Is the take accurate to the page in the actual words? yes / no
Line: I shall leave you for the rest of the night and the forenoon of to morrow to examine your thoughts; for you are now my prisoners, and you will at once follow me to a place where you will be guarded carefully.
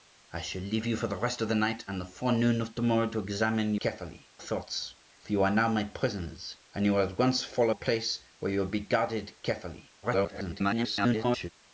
no